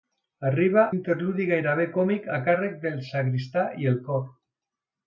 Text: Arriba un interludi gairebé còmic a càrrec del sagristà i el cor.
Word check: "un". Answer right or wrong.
wrong